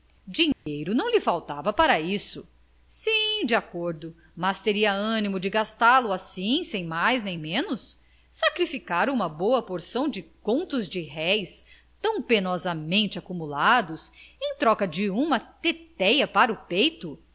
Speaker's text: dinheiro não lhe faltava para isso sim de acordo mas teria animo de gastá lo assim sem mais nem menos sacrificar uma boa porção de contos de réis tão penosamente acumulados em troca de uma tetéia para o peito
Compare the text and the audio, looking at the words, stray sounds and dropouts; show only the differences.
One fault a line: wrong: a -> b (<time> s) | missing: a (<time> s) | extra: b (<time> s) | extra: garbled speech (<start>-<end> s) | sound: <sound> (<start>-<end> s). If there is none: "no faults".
sound: dropout (0.5-0.7 s)